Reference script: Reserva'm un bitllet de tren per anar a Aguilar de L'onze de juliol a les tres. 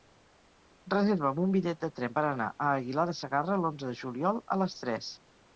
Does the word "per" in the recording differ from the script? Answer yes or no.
no